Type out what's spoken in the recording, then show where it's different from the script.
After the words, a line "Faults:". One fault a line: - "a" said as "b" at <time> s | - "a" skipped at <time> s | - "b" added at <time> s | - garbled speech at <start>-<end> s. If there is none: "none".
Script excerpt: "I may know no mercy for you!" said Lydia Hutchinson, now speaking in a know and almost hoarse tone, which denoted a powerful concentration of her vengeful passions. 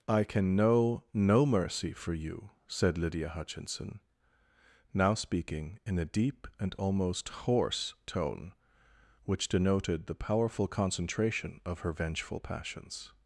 "I can know no mercy for you!" said Lydia Hutchinson, now speaking in a deep and almost hoarse tone, which denoted the powerful concentration of her vengeful passions.
Faults:
- "may" said as "can" at 0.2 s
- "know" said as "deep" at 6.0 s
- "a" said as "the" at 10.1 s